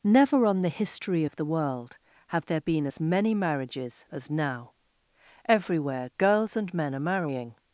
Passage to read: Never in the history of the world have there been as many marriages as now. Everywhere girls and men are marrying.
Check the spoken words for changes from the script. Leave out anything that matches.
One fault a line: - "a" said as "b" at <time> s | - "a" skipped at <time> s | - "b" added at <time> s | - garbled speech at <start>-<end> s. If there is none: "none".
- "in" said as "on" at 0.5 s